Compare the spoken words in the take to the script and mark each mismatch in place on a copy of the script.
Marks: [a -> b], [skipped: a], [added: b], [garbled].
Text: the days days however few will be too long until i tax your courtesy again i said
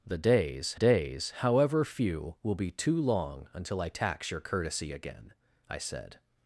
the days days however few will be too long until i tax your courtesy again i said